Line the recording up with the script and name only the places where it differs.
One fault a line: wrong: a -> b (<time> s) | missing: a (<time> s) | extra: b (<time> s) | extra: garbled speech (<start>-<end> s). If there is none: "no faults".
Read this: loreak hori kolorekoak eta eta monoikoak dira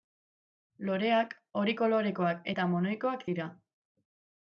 missing: eta (2.7 s)